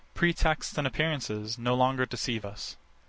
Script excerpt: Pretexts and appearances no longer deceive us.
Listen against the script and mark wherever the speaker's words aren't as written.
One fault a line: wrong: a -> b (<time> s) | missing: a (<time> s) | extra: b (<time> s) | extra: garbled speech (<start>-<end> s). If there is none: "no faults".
no faults